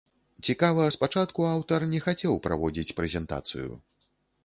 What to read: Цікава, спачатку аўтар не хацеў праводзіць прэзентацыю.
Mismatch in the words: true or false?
false